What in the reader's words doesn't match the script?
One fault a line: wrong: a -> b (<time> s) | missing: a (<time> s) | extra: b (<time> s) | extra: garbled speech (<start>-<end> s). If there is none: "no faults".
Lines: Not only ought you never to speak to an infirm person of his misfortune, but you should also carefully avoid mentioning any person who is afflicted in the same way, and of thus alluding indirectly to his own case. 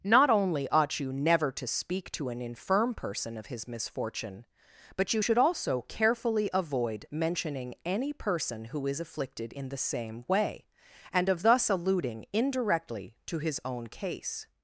no faults